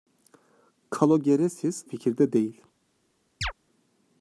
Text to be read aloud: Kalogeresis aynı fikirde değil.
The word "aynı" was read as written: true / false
false